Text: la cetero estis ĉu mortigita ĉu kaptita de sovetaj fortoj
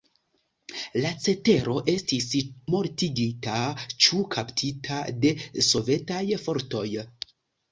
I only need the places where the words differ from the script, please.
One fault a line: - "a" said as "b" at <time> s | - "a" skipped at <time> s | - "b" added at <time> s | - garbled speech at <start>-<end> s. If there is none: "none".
- "ĉu" skipped at 2.3 s